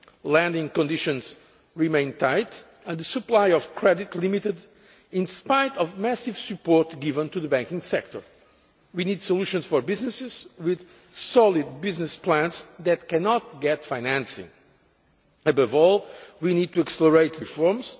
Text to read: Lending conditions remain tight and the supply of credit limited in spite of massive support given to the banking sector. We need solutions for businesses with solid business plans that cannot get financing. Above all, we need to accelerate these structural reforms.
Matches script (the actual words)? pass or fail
fail